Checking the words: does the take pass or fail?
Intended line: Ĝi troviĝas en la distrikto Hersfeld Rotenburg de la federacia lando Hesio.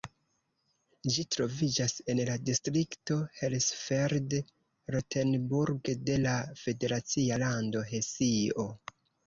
pass